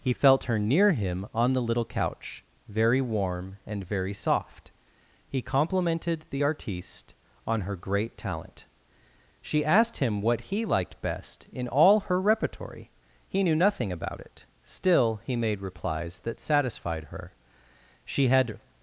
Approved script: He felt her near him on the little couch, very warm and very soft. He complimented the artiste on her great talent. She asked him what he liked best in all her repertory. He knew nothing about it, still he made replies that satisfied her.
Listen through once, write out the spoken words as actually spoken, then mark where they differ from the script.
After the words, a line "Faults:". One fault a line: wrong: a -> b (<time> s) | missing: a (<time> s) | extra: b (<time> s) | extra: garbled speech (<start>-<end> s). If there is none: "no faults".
He felt her near him on the little couch, very warm and very soft. He complimented the artiste on her great talent. She asked him what he liked best in all her repertory. He knew nothing about it, still he made replies that satisfied her. She had
Faults:
extra: She had (18.0 s)